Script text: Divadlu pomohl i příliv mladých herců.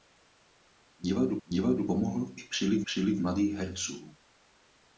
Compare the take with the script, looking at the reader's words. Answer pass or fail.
fail